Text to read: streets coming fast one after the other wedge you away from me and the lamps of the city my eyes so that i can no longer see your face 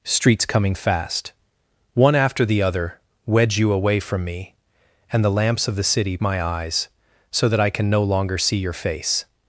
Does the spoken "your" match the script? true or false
true